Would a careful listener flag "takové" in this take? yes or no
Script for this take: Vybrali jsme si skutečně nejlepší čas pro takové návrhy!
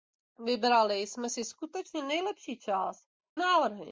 yes